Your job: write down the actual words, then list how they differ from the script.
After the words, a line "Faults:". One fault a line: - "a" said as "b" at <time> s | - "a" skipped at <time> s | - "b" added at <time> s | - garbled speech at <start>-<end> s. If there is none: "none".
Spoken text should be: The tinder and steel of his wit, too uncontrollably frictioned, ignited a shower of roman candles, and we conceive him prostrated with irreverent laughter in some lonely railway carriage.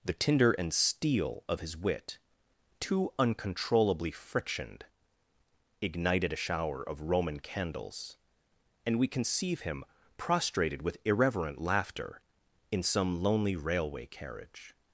The tinder and steel of his wit, too uncontrollably frictioned, ignited a shower of roman candles, and we conceive him prostrated with irreverent laughter in some lonely railway carriage.
Faults:
none